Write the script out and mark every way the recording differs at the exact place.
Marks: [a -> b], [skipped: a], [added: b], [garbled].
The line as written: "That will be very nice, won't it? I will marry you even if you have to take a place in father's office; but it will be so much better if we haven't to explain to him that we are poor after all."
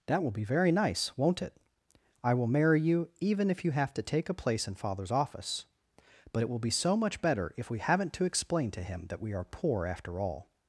"That will be very nice, won't it? I will marry you even if you have to take a place in father's office; but it will be so much better if we haven't to explain to him that we are poor after all."